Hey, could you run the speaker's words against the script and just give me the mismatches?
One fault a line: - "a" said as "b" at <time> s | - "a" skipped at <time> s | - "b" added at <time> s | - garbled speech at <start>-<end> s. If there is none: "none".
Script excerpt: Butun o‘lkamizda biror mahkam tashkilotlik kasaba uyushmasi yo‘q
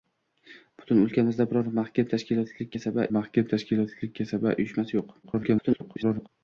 - "mahkam tashkilotlik kasaba" added at 3.2 s
- garbled speech at 5.2-6.3 s